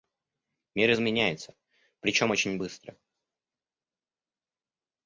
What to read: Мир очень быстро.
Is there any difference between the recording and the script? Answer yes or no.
yes